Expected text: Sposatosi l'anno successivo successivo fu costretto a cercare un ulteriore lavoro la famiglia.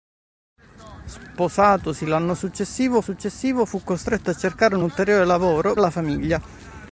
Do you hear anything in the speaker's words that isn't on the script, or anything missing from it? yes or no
no